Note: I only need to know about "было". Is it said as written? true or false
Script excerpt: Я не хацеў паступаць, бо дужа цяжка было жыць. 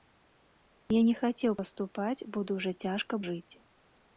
false